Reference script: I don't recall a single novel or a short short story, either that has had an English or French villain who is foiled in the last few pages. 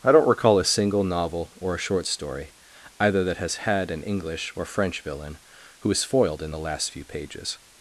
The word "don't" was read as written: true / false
true